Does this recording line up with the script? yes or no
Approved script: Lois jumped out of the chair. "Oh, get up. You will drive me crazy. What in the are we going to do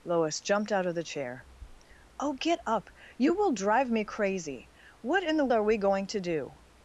yes